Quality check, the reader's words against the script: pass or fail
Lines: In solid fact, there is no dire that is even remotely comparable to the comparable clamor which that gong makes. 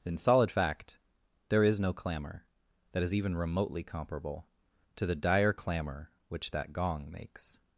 fail